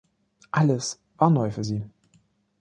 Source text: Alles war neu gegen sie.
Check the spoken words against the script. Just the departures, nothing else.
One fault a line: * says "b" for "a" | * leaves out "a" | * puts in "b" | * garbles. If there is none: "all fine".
* says "für" for "gegen"